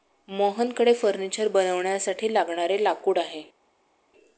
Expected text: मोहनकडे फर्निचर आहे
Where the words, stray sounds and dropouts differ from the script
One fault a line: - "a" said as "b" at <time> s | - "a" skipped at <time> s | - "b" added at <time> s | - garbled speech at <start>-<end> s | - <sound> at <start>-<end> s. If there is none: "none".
- "बनवण्यासाठी लागणारे लाकूड" added at 1.5 s